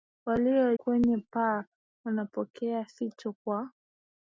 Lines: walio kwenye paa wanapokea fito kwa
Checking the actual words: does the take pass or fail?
pass